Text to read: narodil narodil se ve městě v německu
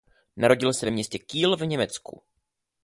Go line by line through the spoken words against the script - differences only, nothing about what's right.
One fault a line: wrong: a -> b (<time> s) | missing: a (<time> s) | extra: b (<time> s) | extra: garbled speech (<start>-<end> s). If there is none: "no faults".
missing: narodil (0.7 s)
extra: kiel (1.2 s)